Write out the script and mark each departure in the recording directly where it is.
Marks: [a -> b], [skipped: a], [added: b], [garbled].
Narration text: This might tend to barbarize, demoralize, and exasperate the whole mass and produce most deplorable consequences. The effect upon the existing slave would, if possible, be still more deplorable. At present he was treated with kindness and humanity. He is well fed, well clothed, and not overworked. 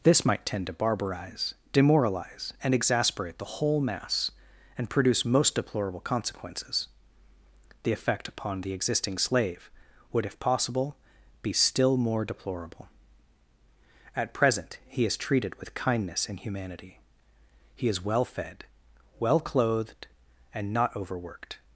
This might tend to barbarize, demoralize, and exasperate the whole mass and produce most deplorable consequences. The effect upon the existing slave would, if possible, be still more deplorable. At present he [was -> is] treated with kindness and humanity. He is well fed, well clothed, and not overworked.